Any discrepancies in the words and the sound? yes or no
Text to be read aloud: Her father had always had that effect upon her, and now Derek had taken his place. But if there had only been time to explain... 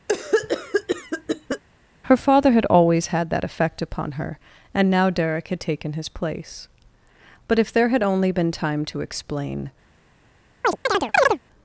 yes